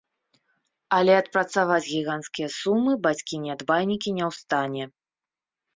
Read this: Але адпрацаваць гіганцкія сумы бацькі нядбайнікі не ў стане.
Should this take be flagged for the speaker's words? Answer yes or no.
no